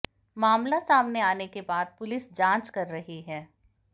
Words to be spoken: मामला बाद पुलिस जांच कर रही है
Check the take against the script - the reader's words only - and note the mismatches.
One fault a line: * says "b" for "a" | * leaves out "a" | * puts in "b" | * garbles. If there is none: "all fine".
* puts in "सामने आने के"